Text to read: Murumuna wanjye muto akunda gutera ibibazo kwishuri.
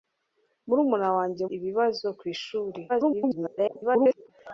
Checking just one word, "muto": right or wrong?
wrong